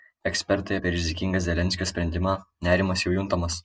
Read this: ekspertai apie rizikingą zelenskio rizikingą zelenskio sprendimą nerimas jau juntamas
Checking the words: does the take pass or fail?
fail